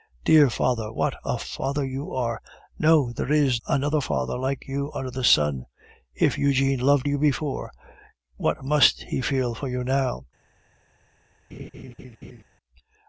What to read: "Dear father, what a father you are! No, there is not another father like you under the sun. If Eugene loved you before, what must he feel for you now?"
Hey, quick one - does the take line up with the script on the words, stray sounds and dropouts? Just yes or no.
no